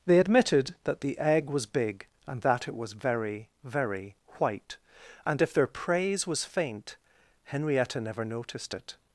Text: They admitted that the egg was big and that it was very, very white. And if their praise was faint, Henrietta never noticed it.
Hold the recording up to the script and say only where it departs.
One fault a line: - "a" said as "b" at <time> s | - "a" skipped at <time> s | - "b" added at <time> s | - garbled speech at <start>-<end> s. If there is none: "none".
none